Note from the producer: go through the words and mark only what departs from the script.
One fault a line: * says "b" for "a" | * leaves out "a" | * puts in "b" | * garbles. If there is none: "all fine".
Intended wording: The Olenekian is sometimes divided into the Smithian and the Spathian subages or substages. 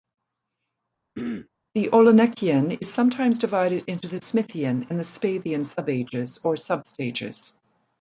all fine